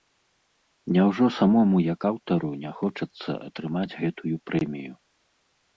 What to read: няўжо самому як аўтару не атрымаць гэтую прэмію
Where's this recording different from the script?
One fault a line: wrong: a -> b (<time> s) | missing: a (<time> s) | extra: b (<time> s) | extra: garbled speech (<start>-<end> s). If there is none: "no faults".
extra: хочацца (2.8 s)